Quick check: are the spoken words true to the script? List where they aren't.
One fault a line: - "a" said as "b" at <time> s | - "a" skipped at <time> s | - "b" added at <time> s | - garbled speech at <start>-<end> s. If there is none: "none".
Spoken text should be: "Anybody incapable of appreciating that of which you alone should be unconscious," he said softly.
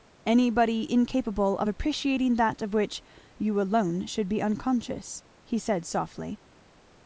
none